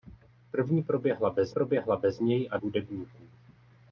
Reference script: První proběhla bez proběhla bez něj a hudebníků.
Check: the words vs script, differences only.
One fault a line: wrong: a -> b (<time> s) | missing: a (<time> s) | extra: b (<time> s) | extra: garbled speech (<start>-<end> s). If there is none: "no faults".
no faults